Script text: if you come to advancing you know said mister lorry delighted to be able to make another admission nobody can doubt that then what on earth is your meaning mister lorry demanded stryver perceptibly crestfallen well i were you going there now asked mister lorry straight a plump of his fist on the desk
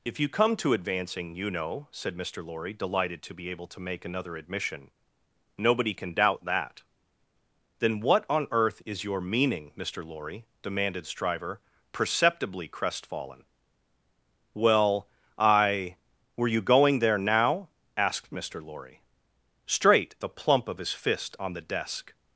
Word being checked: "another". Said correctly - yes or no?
yes